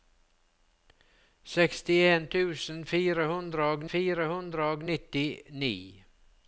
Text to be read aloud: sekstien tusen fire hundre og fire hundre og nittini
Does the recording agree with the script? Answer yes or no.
yes